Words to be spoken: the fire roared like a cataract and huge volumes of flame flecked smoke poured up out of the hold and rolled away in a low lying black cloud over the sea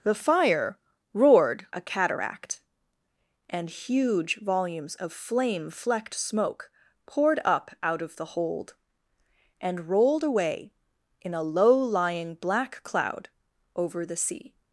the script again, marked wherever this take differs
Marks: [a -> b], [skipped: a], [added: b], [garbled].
the fire roared [skipped: like] a cataract and huge volumes of flame flecked smoke poured up out of the hold and rolled away in a low lying black cloud over the sea